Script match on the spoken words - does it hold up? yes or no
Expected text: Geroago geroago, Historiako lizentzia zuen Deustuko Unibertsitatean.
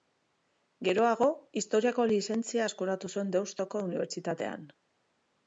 no